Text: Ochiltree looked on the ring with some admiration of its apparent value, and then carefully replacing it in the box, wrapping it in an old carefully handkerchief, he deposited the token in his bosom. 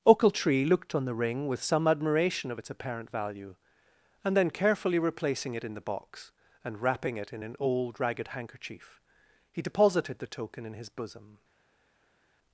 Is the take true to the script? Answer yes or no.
no